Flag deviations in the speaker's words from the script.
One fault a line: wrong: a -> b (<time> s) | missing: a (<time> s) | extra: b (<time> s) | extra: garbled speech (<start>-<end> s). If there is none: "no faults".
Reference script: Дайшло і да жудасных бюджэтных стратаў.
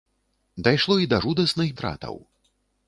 missing: бюджэтных (1.7 s)